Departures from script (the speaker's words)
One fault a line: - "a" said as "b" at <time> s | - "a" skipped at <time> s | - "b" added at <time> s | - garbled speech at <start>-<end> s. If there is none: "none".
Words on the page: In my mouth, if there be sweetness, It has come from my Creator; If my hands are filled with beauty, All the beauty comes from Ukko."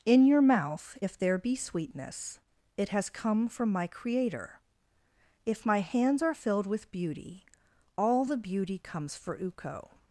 - "my" said as "your" at 0.2 s
- "from" said as "for" at 9.2 s